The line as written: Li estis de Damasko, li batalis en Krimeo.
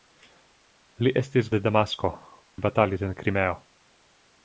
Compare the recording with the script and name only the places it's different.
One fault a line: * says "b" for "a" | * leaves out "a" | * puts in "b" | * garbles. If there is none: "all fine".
all fine